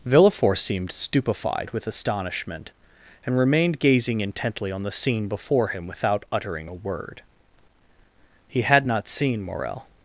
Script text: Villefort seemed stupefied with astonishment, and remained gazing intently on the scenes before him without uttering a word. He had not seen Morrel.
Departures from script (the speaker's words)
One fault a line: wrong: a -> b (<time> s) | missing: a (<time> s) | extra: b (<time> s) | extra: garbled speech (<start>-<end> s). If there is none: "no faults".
wrong: scenes -> scene (4.9 s)